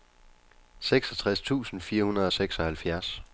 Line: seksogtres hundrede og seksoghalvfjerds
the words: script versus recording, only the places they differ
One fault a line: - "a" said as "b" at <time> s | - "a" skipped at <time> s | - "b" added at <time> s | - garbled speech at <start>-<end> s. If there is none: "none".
- "tusind fire" added at 1.4 s